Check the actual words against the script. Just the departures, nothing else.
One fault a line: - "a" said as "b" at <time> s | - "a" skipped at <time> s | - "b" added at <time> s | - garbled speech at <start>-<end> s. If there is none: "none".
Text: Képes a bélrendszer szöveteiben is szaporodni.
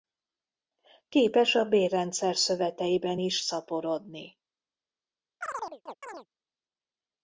none